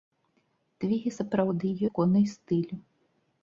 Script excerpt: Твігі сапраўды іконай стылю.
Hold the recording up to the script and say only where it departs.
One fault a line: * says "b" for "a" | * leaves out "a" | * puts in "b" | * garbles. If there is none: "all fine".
all fine